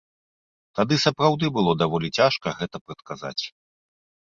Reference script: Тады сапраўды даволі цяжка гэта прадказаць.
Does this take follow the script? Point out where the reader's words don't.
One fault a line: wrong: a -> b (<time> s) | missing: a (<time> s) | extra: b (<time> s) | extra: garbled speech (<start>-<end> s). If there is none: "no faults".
extra: было (1.6 s)